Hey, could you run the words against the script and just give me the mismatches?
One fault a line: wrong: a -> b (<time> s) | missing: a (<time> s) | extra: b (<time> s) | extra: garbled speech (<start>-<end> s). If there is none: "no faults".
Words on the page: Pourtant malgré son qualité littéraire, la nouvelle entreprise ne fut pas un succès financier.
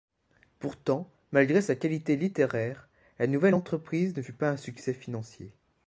wrong: son -> sa (1.6 s)